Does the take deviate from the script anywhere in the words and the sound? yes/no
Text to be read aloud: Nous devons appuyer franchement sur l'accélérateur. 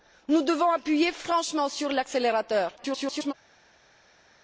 yes